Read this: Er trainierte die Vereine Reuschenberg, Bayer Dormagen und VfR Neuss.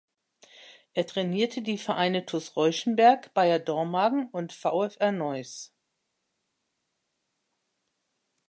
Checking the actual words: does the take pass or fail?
fail